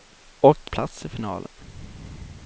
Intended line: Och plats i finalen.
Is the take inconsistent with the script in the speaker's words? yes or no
no